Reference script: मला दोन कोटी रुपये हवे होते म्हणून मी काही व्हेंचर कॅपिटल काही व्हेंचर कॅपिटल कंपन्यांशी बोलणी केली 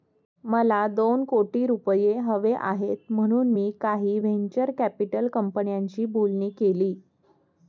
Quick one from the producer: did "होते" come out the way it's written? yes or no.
no